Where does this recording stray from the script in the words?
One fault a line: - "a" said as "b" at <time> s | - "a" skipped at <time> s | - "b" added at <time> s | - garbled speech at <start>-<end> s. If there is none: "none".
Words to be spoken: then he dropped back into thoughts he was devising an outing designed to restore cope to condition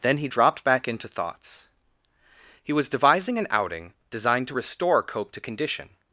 none